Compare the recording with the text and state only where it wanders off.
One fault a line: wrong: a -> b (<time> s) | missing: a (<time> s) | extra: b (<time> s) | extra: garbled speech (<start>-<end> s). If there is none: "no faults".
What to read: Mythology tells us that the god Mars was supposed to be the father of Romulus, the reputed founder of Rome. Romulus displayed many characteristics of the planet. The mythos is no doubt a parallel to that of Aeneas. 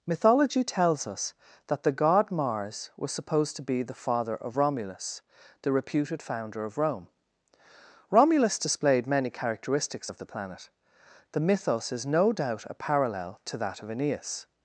no faults